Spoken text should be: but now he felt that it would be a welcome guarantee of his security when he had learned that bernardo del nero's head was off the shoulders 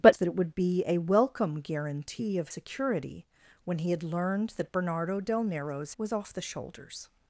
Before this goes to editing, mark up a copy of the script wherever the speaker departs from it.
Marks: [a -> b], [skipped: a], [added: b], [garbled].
but [skipped: now he felt] that it would be a welcome guarantee of [skipped: his] security when he had learned that bernardo del nero's [skipped: head] was off the shoulders